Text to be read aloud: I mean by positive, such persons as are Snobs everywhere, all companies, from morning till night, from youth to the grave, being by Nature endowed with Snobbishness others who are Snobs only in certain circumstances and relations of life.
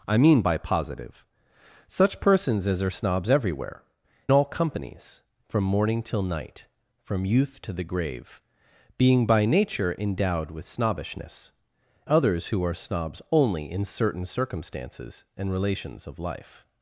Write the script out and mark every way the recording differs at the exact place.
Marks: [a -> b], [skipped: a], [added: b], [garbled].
I mean by positive, such persons as are Snobs everywhere, all companies, from morning till night, from youth to the grave, being by Nature endowed with Snobbishness others who are Snobs only in certain circumstances and relations of life.